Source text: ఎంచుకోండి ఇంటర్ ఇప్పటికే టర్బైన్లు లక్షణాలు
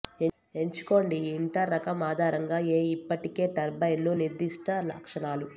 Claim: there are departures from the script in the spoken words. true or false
true